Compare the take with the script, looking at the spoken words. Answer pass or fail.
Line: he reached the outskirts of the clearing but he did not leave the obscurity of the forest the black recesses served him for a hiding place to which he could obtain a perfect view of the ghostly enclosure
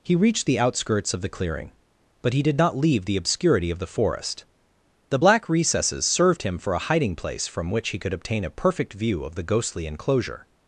fail